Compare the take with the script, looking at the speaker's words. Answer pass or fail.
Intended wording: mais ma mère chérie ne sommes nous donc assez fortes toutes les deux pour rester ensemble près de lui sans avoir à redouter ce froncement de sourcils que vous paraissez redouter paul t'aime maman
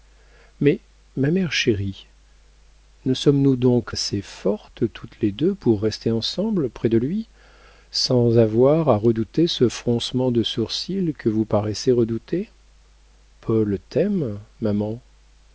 pass